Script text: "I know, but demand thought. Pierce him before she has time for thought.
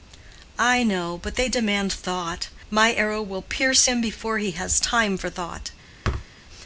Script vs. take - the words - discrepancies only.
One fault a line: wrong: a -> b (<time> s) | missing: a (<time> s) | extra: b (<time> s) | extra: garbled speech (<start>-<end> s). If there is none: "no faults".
extra: they (1.4 s)
extra: My arrow will (2.7 s)
wrong: she -> he (4.4 s)